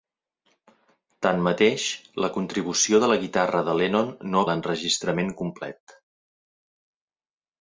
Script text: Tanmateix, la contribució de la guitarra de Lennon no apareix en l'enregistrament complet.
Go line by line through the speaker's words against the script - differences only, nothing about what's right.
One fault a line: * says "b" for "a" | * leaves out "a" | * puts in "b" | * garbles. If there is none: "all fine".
* leaves out "apareix en"